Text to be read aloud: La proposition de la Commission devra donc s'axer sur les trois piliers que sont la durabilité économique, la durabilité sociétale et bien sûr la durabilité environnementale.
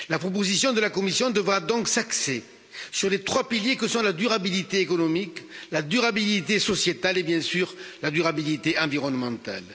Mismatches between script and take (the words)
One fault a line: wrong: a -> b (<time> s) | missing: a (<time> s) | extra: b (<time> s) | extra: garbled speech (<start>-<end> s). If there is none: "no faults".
no faults